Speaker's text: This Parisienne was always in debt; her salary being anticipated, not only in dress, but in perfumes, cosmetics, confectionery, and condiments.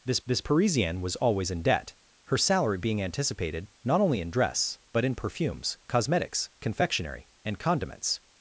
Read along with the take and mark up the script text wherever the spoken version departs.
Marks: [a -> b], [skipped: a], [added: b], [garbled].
This [added: this] Parisienne was always in debt; her salary being anticipated, not only in dress, but in perfumes, cosmetics, confectionery, and condiments.